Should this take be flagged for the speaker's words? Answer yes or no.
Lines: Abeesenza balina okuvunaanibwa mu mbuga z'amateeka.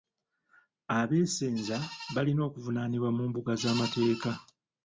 no